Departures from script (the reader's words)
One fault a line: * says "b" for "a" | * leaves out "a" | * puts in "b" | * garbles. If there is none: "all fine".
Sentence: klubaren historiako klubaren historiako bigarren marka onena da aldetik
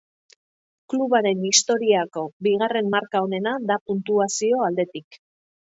* leaves out "klubaren historiako"
* puts in "puntuazio"